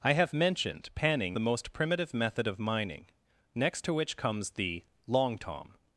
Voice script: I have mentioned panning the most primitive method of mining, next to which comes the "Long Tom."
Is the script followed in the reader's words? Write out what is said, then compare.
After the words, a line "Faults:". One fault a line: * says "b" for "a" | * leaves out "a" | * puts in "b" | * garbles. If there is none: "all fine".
I have mentioned panning the most primitive method of mining, next to which comes the "Long Tom."
Faults:
all fine